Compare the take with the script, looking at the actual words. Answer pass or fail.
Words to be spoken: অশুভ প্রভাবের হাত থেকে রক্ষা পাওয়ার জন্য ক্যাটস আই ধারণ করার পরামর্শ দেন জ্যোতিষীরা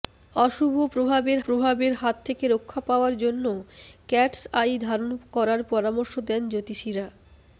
fail